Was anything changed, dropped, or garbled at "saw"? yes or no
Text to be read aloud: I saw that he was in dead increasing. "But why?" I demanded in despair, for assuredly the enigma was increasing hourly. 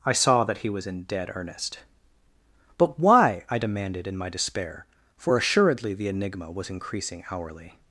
no